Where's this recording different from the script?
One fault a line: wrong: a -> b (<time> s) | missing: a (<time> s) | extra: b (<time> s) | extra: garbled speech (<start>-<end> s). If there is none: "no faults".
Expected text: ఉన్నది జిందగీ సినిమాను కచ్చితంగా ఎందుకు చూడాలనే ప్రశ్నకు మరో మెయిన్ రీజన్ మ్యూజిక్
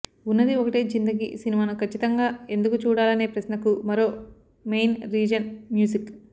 extra: ఒకటే (0.6 s)